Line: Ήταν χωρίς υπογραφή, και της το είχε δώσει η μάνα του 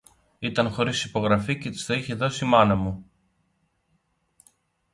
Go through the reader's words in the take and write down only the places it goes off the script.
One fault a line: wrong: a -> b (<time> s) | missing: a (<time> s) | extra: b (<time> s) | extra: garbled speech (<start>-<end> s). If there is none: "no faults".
wrong: του -> μου (2.7 s)